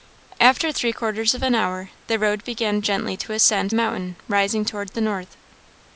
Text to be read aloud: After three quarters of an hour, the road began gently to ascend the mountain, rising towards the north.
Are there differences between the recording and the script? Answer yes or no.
yes